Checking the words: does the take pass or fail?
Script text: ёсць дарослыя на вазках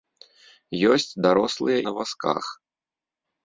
pass